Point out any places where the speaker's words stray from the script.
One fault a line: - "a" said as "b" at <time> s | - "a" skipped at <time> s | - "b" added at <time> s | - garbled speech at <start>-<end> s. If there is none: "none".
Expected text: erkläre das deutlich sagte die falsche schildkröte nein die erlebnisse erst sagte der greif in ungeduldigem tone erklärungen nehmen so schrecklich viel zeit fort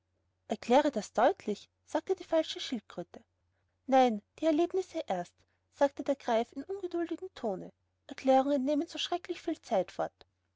none